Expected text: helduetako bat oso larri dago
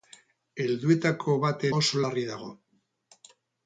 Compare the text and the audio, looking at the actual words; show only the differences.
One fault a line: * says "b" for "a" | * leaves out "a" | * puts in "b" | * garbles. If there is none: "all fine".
all fine